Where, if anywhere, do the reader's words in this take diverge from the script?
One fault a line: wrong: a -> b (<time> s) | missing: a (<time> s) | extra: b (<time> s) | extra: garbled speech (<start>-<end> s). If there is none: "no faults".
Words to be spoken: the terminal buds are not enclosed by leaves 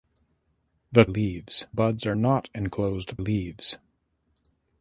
wrong: terminal -> leaves (1.1 s)
missing: by (3.2 s)